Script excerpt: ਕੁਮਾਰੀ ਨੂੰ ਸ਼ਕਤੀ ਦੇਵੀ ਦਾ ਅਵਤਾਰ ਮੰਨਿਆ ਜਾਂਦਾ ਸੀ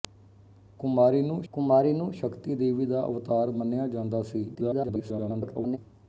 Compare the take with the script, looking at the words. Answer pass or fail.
fail